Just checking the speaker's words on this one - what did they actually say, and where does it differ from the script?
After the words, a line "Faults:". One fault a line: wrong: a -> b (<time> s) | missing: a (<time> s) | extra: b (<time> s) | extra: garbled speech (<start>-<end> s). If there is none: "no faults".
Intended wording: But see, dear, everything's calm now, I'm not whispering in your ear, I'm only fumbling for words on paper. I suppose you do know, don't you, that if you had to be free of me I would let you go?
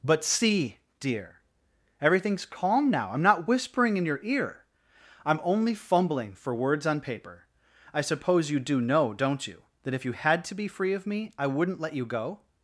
But see, dear, everything's calm now, I'm not whispering in your ear, I'm only fumbling for words on paper. I suppose you do know, don't you, that if you had to be free of me I wouldn't let you go?
Faults:
wrong: would -> wouldn't (11.5 s)